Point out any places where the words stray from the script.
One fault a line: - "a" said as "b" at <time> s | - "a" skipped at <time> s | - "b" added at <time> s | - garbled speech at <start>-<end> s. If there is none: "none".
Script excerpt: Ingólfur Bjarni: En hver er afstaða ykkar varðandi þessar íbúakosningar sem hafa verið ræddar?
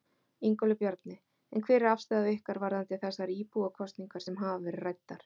none